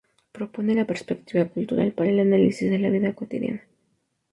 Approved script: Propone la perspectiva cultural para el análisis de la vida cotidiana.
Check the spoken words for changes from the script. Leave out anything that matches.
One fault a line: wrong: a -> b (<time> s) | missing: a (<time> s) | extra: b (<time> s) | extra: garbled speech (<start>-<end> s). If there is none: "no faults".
no faults